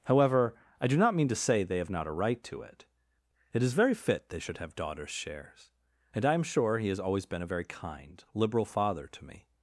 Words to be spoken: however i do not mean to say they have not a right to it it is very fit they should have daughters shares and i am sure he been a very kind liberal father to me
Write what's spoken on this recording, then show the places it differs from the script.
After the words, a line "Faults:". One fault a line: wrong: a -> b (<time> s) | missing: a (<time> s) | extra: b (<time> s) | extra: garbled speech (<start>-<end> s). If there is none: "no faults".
however i do not mean to say they have not a right to it it is very fit they should have daughters shares and i am sure he has always been a very kind liberal father to me
Faults:
extra: has always (6.9 s)